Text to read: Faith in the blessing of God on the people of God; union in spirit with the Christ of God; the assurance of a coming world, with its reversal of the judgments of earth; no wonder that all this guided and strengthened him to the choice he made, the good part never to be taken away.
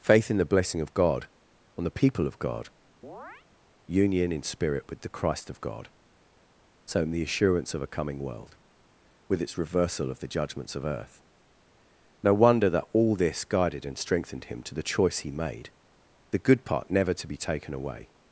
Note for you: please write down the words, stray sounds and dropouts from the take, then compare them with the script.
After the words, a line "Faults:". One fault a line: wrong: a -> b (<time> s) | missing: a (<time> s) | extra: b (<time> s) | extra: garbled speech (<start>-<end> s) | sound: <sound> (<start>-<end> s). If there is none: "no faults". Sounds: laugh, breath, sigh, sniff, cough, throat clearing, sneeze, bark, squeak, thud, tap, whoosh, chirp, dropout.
Faith in the blessing of God on the people of God; union in spirit with the Christ of God; so in the assurance of a coming world, with its reversal of the judgments of earth; no wonder that all this guided and strengthened him to the choice he made, the good part never to be taken away.
Faults:
sound: chirp (3.0-3.5 s)
extra: so in (6.8 s)